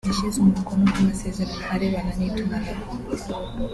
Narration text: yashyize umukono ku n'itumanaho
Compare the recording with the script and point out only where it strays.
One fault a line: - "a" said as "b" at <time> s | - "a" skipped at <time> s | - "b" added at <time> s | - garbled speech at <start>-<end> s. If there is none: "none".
- "masezerano arebana" added at 1.1 s